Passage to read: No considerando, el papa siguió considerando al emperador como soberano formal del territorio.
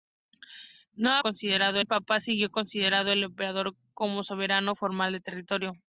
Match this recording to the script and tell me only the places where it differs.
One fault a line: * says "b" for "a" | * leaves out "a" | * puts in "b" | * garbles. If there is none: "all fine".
all fine